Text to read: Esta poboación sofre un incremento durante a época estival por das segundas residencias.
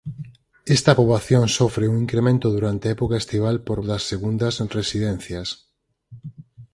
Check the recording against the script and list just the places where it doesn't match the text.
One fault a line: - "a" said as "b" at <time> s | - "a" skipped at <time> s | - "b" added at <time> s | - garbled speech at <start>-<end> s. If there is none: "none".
none